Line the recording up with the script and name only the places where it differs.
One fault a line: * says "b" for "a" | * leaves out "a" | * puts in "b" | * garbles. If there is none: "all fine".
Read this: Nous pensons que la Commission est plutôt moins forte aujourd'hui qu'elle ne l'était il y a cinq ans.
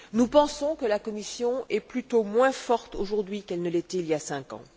all fine